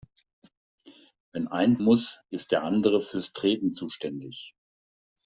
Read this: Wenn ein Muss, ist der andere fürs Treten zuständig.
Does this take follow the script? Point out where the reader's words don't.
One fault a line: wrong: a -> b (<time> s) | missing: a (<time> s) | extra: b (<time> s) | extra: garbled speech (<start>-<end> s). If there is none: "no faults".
no faults